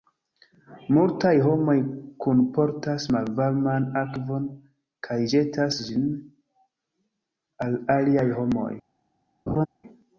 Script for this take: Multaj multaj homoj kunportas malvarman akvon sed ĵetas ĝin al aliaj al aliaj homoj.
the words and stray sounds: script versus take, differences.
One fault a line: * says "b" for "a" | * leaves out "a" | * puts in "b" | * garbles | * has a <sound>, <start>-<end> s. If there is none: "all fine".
* leaves out "multaj"
* says "kaj" for "sed"
* leaves out "al aliaj"
* has a laugh, 9.5-9.7 s